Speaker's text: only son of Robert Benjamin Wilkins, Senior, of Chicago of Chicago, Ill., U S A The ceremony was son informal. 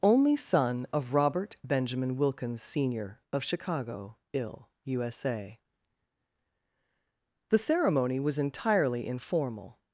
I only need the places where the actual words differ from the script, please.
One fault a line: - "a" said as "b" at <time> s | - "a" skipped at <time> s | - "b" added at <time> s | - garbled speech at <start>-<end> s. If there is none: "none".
- "of Chicago" skipped at 4.2 s
- "son" said as "entirely" at 8.4 s